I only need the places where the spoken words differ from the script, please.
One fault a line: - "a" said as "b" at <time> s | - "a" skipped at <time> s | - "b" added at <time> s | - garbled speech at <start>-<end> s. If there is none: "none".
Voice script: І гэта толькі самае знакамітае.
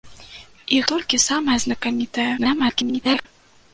- "гэта" skipped at 0.8 s
- garbled speech at 2.4-3.3 s